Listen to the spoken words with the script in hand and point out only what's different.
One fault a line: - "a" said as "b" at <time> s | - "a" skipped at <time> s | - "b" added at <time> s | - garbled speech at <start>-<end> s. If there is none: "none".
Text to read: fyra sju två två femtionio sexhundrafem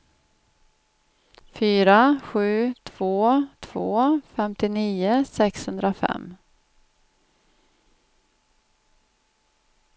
none